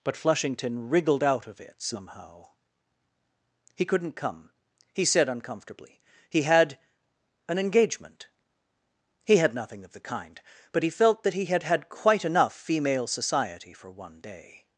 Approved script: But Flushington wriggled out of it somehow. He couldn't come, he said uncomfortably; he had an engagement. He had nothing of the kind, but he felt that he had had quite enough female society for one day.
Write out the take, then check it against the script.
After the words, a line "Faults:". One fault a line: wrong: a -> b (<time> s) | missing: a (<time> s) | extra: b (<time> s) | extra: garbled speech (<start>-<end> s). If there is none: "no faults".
But Flushington wriggled out of it somehow. He couldn't come, he said uncomfortably; he had an engagement. He had nothing of the kind, but he felt that he had had quite enough female society for one day.
Faults:
no faults